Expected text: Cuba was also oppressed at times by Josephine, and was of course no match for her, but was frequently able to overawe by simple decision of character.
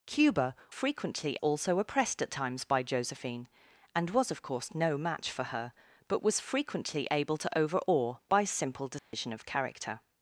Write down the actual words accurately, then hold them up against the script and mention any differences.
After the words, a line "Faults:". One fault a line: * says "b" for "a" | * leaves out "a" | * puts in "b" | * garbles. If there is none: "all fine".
Cuba frequently also oppressed at times by Josephine, and was of course no match for her, but was frequently able to overawe by simple decision of character.
Faults:
* says "frequently" for "was"